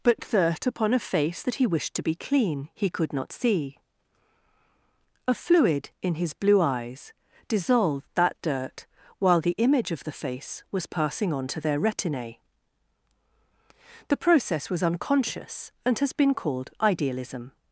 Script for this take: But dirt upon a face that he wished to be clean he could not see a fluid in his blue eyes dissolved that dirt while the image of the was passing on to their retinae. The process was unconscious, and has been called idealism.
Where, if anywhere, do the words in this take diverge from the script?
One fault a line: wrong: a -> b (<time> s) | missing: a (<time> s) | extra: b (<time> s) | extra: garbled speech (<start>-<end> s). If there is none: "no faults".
extra: face (10.1 s)